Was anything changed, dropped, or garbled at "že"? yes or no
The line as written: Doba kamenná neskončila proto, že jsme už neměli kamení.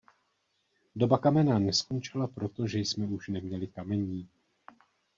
no